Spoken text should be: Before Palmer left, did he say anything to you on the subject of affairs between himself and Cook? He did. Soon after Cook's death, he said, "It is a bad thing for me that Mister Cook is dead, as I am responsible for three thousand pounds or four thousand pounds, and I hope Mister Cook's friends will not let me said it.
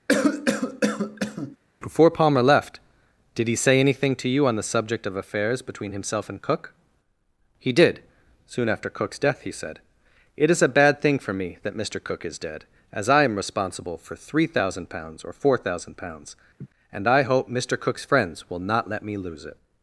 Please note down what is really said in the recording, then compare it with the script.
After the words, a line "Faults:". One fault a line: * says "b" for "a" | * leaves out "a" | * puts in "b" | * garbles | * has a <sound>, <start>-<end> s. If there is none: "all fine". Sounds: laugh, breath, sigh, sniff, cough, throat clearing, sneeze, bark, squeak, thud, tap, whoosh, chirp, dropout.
Before Palmer left, did he say anything to you on the subject of affairs between himself and Cook? He did. Soon after Cook's death, he said, "It is a bad thing for me that Mister Cook is dead, as I am responsible for three thousand pounds or four thousand pounds, and I hope Mister Cook's friends will not let me lose it.
Faults:
* has a cough, 0.1-1.6 s
* has a laugh, 16.6-16.7 s
* says "lose" for "said"